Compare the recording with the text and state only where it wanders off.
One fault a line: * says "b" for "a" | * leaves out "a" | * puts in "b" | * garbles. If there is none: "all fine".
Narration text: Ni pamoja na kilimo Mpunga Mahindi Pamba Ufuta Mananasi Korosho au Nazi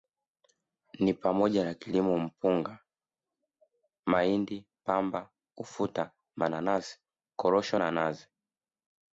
* says "na" for "au"